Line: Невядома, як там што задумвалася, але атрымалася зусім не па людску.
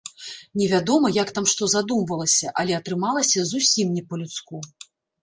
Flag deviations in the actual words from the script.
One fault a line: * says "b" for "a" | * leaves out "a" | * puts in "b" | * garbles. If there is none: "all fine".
all fine